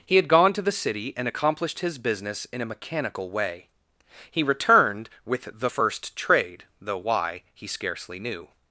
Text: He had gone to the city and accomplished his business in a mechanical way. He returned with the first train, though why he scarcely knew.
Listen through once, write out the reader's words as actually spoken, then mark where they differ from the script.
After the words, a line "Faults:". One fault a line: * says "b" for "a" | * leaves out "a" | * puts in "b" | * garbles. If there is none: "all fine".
He had gone to the city and accomplished his business in a mechanical way. He returned with the first trade, though why he scarcely knew.
Faults:
* says "trade" for "train"